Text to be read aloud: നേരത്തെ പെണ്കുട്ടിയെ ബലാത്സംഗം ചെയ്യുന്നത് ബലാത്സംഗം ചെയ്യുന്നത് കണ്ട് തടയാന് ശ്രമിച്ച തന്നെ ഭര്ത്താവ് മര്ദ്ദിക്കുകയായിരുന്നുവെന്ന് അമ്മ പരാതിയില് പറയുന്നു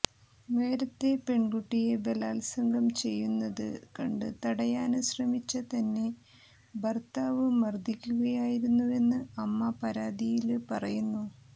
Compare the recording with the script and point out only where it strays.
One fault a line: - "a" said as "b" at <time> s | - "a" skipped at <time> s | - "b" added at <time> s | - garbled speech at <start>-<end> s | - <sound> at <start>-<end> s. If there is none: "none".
- "ബലാത്സംഗം ചെയ്യുന്നത്" skipped at 3.7 s